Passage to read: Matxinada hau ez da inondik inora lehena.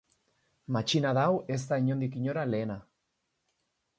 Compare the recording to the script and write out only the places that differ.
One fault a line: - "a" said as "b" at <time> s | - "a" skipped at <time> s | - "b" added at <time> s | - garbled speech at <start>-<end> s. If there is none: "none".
none